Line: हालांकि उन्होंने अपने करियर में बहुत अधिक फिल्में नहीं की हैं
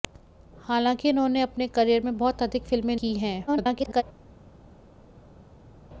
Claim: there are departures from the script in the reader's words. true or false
true